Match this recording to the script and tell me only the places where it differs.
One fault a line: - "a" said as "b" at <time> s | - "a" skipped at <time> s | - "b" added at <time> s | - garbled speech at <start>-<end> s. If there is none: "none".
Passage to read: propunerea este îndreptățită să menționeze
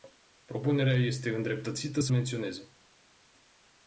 none